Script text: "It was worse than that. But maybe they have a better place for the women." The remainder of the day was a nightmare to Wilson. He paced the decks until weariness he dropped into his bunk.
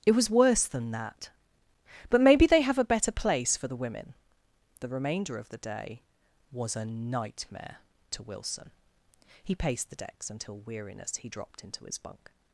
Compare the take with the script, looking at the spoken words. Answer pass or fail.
pass